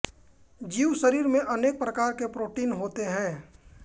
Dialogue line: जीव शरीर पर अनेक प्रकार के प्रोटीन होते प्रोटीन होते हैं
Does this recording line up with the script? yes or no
no